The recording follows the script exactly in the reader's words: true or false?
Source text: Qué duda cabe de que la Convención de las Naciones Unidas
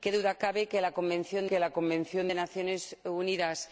false